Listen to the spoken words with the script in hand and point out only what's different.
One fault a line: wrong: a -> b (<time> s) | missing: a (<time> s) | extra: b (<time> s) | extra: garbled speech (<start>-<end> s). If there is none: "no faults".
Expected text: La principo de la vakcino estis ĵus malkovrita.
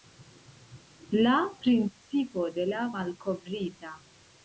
missing: vakcino estis ĵus (2.8 s)